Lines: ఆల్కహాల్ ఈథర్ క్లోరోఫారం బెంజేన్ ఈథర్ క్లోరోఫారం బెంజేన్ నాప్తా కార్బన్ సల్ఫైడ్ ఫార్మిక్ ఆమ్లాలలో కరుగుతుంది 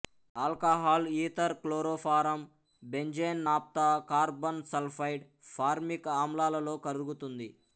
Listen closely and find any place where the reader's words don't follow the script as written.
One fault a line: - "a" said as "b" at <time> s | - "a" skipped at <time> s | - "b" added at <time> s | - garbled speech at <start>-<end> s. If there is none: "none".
- "ఈథర్ క్లోరోఫారం బెంజేన్" skipped at 3.4 s